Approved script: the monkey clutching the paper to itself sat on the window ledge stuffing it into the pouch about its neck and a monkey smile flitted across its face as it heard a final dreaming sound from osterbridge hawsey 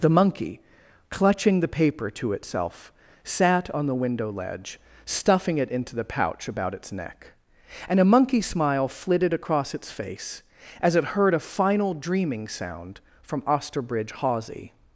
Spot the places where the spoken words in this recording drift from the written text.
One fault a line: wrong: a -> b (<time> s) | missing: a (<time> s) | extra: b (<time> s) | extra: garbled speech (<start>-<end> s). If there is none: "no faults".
no faults